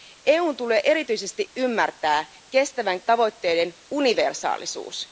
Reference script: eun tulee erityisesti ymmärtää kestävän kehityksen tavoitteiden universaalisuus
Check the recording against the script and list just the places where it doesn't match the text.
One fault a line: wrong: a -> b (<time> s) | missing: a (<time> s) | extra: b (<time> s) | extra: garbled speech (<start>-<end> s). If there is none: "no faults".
missing: kehityksen (3.0 s)